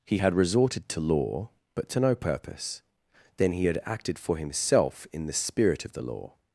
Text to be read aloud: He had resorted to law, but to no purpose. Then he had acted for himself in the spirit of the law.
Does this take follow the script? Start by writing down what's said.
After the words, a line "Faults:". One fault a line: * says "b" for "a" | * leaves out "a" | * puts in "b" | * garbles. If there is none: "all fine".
He had resorted to law, but to no purpose. Then he had acted for himself in the spirit of the law.
Faults:
all fine